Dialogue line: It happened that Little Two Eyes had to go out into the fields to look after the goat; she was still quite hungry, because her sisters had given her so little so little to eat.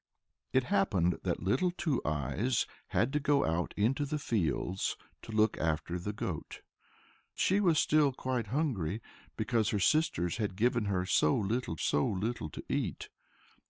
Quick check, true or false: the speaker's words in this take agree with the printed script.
true